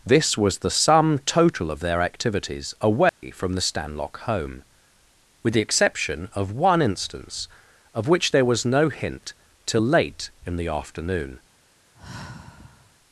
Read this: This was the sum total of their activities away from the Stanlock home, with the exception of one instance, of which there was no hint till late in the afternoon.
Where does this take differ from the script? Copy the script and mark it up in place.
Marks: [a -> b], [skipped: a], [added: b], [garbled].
This was the sum total of their activities away from the Stanlock home, with the exception of one instance, of which there was no hint till late in the afternoon.